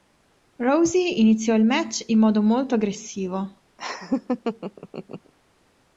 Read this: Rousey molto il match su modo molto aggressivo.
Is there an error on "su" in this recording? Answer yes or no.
yes